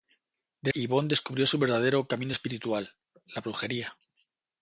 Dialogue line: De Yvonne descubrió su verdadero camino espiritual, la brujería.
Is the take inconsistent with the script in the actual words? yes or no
no